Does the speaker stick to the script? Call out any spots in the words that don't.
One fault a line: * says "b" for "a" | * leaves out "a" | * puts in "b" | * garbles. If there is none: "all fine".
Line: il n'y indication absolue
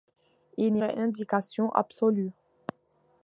all fine